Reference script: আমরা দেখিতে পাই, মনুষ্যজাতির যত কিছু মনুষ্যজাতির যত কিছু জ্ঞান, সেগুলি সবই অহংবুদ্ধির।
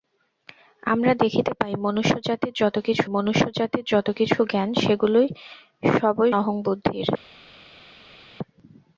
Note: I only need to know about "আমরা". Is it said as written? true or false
true